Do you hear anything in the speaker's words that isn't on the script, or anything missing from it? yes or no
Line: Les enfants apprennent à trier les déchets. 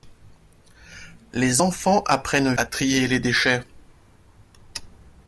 no